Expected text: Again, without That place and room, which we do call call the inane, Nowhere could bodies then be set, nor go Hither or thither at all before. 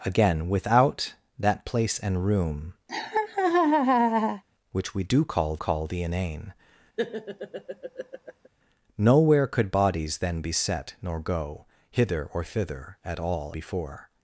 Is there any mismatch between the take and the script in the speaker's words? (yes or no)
no